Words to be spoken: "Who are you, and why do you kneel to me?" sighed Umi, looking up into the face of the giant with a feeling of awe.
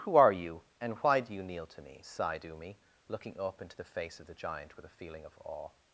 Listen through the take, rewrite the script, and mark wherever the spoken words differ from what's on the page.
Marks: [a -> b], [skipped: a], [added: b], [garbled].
"Who are you, and why do you kneel to me?" sighed Umi, looking up into the face of the giant with a feeling of awe.